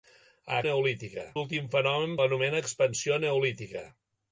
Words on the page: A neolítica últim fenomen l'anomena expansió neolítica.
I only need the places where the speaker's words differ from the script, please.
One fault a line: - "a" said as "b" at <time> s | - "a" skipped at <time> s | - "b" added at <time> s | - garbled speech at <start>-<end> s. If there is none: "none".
none